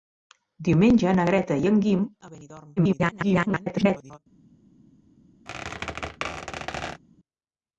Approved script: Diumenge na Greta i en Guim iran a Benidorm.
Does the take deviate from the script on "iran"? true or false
true